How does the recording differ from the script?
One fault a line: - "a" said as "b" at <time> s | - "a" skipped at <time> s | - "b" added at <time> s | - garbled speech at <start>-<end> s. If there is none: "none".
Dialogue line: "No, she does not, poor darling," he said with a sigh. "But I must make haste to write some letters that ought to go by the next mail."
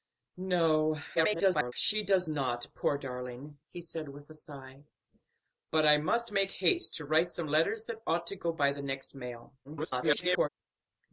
- garbled speech at 1.1-1.7 s
- garbled speech at 9.6-10.5 s